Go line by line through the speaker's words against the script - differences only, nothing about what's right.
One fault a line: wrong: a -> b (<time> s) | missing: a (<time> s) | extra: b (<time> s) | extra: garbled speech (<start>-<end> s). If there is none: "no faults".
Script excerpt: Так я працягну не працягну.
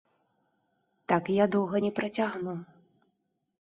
wrong: працягну -> доўга (1.6 s)